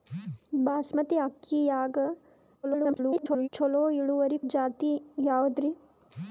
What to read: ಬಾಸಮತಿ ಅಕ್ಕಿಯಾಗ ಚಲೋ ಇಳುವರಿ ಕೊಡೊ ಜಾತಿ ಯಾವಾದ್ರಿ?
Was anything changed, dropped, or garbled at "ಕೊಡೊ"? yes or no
yes